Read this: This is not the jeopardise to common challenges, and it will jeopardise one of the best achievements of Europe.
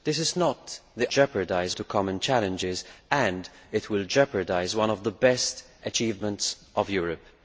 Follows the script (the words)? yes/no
yes